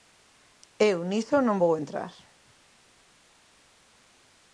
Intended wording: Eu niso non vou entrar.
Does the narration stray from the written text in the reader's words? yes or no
no